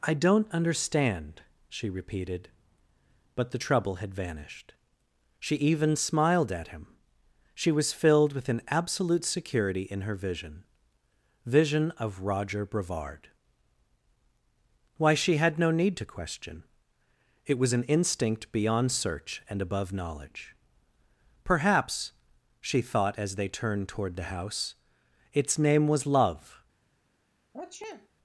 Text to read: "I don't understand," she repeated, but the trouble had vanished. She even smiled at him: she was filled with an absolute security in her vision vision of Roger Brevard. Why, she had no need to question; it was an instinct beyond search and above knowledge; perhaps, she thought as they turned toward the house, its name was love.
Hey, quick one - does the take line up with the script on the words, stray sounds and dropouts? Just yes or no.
no